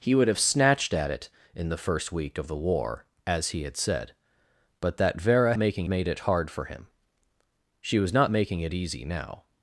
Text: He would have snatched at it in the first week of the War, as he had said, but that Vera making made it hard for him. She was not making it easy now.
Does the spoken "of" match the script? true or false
true